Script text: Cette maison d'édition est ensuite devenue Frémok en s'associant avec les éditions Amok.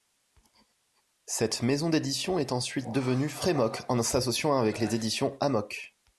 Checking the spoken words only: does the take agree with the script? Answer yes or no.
yes